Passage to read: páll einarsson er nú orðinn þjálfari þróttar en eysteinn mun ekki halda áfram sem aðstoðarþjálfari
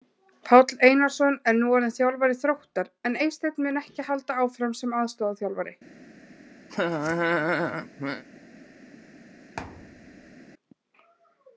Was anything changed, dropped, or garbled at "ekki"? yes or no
no